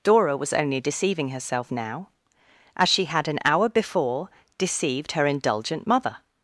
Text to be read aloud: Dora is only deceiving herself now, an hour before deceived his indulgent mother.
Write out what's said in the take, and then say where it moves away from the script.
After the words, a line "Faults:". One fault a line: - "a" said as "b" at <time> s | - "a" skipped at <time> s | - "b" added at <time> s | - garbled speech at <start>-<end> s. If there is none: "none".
Dora was only deceiving herself now, as she had an hour before deceived her indulgent mother.
Faults:
- "is" said as "was" at 0.3 s
- "as she had" added at 2.8 s
- "his" said as "her" at 5.1 s